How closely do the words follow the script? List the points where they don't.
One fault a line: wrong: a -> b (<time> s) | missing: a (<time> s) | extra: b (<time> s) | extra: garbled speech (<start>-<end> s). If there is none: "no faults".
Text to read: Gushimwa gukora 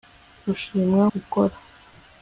no faults